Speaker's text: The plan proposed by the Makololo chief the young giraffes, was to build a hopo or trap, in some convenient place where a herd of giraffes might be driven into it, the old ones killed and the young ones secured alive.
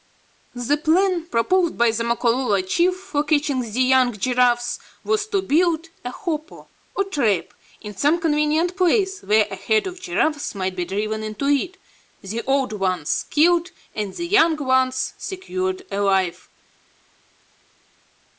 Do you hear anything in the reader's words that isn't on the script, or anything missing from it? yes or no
yes